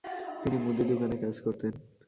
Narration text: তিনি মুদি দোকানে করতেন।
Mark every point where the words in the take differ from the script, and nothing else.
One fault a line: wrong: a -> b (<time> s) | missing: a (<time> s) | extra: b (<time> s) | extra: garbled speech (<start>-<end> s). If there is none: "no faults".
extra: কাজ (1.2 s)